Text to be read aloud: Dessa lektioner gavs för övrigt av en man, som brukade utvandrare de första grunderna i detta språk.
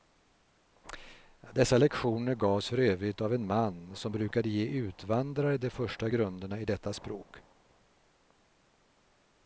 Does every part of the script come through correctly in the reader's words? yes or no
no